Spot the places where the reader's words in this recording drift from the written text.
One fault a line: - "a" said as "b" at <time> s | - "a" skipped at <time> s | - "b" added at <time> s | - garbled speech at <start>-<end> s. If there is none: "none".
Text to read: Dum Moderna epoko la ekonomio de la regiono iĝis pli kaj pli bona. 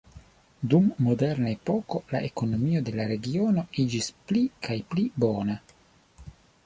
none